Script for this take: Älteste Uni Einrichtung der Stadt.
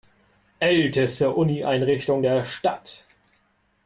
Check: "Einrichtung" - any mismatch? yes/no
no